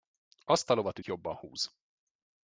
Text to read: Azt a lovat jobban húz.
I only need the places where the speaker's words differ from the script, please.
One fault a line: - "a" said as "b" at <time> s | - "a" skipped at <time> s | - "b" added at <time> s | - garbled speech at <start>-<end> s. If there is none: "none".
none